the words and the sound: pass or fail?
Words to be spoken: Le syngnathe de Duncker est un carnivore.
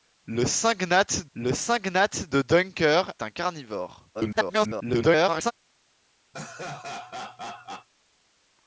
fail